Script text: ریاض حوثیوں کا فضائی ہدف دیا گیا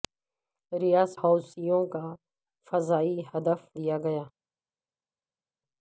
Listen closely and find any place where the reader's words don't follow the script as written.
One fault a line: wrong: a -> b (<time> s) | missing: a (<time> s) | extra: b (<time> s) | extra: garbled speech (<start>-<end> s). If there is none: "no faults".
no faults